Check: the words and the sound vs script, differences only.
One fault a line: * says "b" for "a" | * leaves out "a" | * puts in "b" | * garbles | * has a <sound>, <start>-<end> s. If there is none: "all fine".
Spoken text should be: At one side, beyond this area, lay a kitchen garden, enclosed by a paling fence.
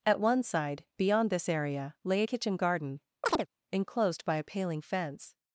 * has a chirp, 3.2-3.5 s